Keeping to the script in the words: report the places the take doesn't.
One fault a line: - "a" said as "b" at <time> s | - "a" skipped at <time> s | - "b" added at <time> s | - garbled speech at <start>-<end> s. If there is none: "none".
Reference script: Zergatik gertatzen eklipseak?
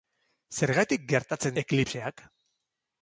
none